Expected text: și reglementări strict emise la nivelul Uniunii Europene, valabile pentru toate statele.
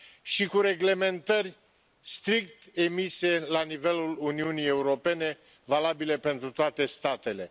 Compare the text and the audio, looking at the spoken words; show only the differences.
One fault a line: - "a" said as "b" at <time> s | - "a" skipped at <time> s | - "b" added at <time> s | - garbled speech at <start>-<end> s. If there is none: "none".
- "cu" added at 0.4 s